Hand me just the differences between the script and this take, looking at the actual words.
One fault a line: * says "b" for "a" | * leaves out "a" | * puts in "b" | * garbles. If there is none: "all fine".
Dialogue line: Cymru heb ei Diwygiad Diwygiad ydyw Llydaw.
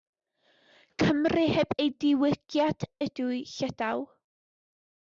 * leaves out "Diwygiad"